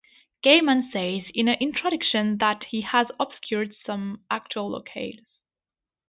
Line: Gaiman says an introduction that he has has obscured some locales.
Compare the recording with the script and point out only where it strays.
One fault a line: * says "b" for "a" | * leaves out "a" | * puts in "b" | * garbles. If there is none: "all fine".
* puts in "in"
* leaves out "has"
* puts in "actual"